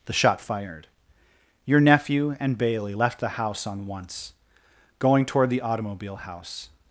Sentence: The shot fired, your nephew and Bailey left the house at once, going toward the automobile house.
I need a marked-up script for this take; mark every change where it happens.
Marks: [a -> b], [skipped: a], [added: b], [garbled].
The shot fired, your nephew and Bailey left the house [at -> on] once, going toward the automobile house.